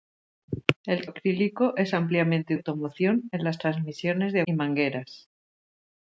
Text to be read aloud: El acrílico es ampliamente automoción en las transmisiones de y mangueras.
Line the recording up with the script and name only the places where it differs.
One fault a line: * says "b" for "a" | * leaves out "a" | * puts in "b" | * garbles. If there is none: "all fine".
all fine